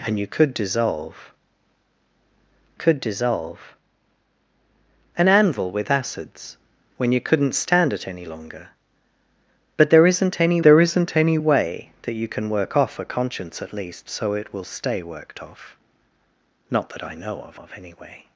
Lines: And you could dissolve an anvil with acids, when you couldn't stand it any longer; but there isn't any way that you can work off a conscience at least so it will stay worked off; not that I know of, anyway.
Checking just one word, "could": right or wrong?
right